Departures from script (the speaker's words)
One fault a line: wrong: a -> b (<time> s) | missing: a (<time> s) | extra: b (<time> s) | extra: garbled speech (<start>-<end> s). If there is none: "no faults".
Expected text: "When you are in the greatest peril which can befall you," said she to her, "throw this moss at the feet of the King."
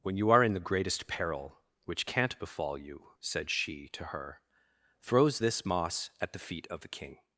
wrong: can -> can't (2.0 s)
wrong: throw -> throws (5.0 s)